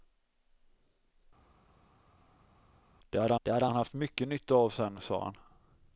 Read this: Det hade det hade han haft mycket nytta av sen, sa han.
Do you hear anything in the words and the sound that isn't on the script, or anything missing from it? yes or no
no